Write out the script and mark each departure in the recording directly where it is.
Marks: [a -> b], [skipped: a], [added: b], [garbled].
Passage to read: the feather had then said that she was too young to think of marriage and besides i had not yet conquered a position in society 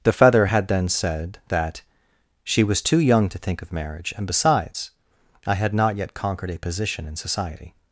the feather had then said that she was too young to think of marriage and besides i had not yet conquered a position in society